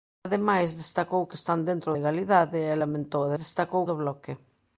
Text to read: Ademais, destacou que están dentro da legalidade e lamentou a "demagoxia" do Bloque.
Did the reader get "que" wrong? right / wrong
right